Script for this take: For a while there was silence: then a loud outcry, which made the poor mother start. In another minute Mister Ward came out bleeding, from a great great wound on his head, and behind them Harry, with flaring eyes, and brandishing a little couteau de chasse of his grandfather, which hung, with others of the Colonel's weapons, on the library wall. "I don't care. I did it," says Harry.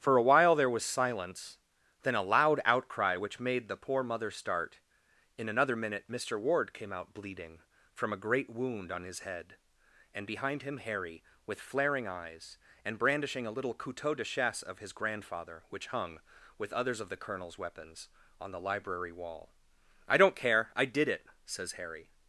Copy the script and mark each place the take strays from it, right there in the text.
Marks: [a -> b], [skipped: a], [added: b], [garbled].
For a while there was silence: then a loud outcry, which made the poor mother start. In another minute Mister Ward came out bleeding, from a great [skipped: great] wound on his head, and behind [them -> him] Harry, with flaring eyes, and brandishing a little couteau de chasse of his grandfather, which hung, with others of the Colonel's weapons, on the library wall. "I don't care. I did it," says Harry.